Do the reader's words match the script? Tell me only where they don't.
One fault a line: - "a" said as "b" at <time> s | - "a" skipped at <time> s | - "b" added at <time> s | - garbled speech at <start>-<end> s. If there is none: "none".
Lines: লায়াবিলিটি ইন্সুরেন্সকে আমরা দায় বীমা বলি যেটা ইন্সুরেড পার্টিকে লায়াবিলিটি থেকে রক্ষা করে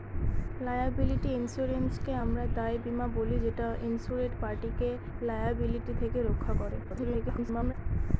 - garbled speech at 6.8-7.7 s